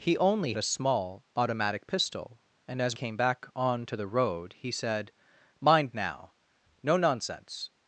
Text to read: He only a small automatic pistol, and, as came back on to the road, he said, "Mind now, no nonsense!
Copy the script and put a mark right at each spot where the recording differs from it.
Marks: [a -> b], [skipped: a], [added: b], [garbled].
He only a small automatic pistol, and, as came back on to the road, he said, "Mind now, no nonsense!